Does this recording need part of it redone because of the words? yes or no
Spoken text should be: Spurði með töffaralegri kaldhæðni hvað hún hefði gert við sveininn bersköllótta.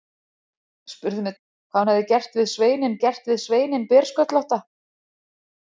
yes